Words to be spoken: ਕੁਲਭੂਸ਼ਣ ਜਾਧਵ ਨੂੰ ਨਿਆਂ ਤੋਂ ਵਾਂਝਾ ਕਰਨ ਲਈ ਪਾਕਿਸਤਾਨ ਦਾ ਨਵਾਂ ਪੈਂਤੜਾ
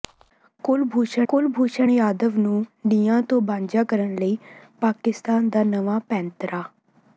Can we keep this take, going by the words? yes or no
no